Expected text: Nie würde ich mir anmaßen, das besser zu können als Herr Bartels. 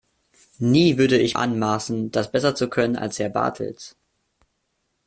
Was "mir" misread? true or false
true